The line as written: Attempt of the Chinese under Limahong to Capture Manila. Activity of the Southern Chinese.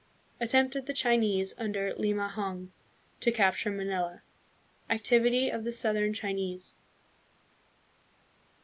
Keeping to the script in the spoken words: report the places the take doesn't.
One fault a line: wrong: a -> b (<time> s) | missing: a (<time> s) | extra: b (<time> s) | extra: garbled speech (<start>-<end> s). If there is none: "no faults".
no faults